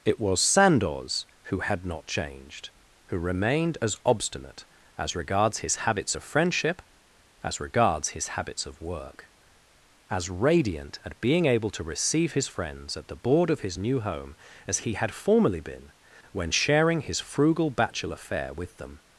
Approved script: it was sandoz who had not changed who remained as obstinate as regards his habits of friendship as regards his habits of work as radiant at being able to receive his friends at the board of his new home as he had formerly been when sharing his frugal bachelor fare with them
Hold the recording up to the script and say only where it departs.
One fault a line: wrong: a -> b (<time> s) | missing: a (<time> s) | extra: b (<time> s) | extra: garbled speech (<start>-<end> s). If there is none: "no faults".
no faults